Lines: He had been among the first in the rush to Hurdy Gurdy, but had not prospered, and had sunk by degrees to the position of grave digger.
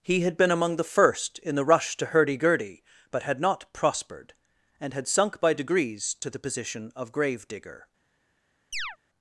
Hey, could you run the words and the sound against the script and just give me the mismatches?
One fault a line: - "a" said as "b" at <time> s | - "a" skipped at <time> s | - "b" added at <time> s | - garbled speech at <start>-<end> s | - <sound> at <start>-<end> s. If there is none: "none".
- chirp at 8.7-9.0 s